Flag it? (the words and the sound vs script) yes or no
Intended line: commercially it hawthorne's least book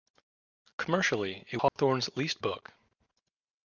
yes